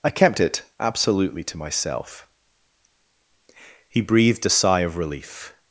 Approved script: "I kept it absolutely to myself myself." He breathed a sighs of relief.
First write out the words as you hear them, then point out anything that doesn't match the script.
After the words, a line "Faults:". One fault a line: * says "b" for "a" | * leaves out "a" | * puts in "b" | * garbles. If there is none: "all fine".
"I kept it absolutely to myself." He breathed a sigh of relief.
Faults:
* leaves out "myself"
* says "sigh" for "sighs"